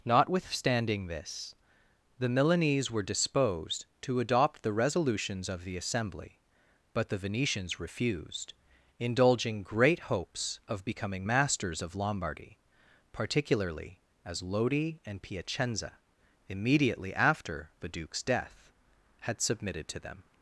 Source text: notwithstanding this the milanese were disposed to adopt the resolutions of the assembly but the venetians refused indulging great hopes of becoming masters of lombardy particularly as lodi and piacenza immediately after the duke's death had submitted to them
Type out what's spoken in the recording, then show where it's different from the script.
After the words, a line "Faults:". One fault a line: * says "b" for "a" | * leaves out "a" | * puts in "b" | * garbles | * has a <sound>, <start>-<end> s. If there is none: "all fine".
notwithstanding this the milanese were disposed to adopt the resolutions of the assembly but the venetians refused indulging great hopes of becoming masters of lombardy particularly as lodi and piacenza immediately after the duke's death had submitted to them
Faults:
all fine